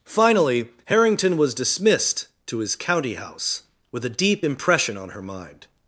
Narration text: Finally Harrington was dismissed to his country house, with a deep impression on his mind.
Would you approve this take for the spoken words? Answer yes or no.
no